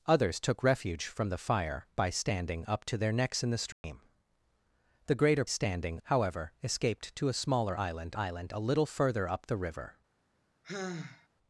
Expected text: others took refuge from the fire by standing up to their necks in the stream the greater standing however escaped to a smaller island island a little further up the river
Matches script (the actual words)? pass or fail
pass